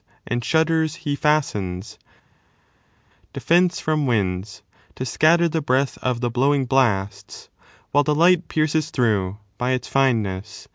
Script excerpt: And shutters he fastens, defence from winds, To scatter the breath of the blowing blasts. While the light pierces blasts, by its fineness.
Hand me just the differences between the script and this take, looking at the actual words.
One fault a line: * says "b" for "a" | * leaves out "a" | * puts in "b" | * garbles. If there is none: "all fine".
* says "through" for "blasts"